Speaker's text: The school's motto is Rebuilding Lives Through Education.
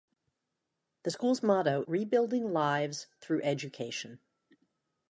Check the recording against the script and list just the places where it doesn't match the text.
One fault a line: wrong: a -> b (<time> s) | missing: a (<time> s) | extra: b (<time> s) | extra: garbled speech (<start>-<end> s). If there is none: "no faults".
missing: is (1.8 s)